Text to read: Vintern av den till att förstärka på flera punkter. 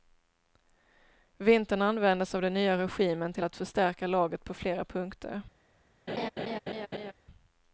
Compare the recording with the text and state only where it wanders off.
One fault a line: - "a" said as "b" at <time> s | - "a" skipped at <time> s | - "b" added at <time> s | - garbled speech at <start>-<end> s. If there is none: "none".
- "användes" added at 1.8 s
- "nya regimen" added at 2.5 s
- "laget" added at 4.1 s